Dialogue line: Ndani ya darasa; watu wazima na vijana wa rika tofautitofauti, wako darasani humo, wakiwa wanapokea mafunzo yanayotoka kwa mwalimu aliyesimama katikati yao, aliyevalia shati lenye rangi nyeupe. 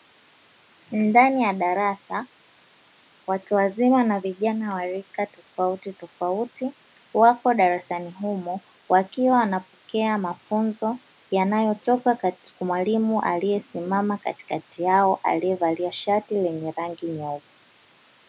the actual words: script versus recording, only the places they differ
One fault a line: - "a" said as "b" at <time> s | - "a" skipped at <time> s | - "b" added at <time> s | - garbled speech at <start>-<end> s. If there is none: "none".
none